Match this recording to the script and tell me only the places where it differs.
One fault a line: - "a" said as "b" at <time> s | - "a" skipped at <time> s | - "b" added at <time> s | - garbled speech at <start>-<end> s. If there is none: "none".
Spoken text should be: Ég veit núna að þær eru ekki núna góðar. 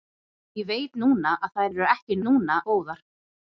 none